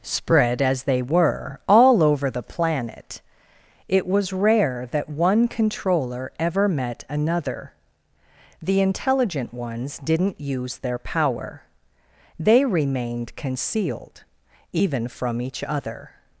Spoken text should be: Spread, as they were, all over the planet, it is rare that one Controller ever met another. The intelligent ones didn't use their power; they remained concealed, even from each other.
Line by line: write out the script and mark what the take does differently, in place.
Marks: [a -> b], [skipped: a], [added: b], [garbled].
Spread, as they were, all over the planet, it [is -> was] rare that one Controller ever met another. The intelligent ones didn't use their power; they remained concealed, even from each other.